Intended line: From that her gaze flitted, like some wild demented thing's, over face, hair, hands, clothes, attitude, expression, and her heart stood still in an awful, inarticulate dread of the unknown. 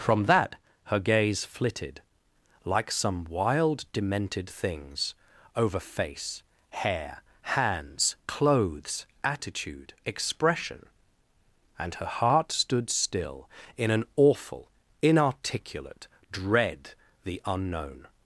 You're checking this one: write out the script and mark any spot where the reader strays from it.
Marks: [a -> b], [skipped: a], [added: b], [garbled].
From that her gaze flitted, like some wild demented thing's, over face, hair, hands, clothes, attitude, expression, and her heart stood still in an awful, inarticulate dread [skipped: of] the unknown.